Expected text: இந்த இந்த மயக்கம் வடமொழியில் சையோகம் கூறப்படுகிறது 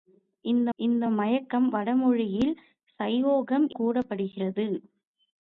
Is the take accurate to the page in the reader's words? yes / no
yes